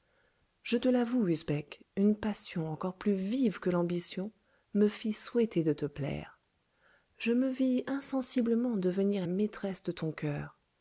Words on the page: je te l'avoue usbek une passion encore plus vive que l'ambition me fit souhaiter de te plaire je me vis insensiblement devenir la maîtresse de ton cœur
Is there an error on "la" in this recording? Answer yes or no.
yes